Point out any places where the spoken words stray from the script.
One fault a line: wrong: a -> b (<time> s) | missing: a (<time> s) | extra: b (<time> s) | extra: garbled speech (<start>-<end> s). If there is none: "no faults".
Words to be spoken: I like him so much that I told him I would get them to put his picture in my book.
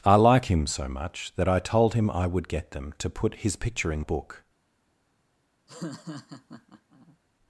missing: my (4.0 s)